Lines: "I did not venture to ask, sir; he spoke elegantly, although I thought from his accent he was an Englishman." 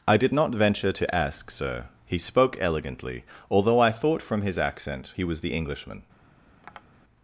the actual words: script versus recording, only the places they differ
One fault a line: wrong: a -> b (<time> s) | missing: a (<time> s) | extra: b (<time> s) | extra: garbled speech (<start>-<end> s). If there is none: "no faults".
wrong: an -> the (5.4 s)